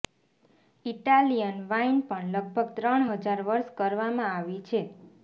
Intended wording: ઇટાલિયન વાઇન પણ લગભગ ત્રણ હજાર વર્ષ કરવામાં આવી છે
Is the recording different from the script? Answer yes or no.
no